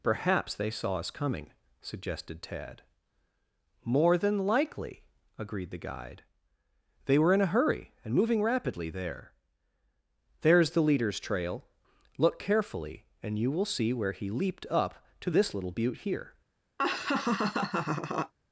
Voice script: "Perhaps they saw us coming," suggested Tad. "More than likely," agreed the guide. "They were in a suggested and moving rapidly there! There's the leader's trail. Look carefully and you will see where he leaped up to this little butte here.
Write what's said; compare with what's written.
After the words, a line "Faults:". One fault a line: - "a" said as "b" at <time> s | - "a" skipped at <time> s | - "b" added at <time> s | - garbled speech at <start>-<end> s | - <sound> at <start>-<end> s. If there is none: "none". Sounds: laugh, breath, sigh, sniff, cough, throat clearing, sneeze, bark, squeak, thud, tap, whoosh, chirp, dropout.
"Perhaps they saw us coming," suggested Tad. "More than likely," agreed the guide. "They were in a hurry and moving rapidly there! There's the leader's trail. Look carefully and you will see where he leaped up to this little butte here.
Faults:
- "suggested" said as "hurry" at 7.5 s
- laugh at 16.8-18.3 s